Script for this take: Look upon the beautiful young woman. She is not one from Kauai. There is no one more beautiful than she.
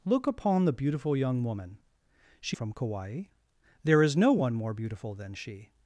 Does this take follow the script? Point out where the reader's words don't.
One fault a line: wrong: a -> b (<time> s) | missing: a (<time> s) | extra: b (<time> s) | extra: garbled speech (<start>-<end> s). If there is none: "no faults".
missing: is not one (2.6 s)